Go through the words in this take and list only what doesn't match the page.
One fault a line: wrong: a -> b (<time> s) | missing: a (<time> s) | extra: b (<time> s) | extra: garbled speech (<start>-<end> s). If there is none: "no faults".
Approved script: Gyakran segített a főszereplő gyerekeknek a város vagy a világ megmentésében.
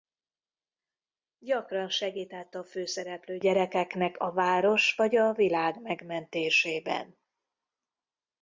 no faults